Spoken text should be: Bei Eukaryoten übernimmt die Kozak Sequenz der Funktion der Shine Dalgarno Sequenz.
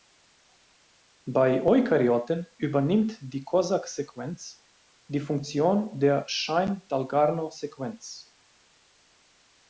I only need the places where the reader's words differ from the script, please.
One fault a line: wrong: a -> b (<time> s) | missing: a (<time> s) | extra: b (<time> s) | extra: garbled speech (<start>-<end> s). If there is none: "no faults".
wrong: der -> die (5.1 s)